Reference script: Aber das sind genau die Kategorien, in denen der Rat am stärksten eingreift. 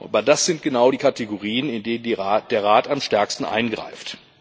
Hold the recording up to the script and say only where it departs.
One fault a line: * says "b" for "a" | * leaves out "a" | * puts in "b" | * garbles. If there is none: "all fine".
all fine